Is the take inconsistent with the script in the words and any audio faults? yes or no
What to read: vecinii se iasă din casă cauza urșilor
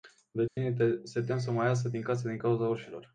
yes